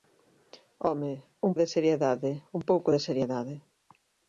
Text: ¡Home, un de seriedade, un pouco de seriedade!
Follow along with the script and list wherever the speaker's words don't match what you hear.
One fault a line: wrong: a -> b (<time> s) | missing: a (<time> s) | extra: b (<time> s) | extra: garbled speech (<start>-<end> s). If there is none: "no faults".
no faults